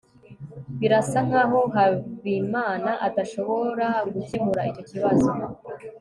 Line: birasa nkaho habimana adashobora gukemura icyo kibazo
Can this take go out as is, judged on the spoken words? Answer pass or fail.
pass